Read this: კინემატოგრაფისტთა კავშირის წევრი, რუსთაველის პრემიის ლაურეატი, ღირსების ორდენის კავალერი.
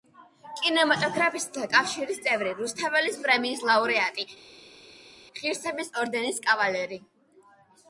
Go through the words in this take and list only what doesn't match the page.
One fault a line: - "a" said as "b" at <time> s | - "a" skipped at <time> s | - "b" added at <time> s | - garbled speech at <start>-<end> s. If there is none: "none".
none